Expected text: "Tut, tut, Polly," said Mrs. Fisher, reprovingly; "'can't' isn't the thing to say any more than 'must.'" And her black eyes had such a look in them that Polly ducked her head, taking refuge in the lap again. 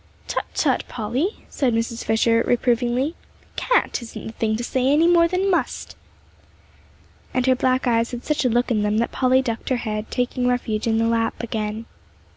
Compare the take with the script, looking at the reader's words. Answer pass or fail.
pass